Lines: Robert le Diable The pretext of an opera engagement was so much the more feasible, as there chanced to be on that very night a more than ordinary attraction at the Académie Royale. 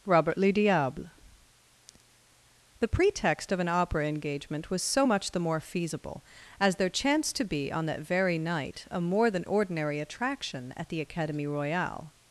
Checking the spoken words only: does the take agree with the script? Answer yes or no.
yes